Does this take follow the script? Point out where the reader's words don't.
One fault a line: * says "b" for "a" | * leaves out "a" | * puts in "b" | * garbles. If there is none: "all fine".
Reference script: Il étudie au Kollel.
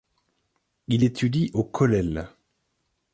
all fine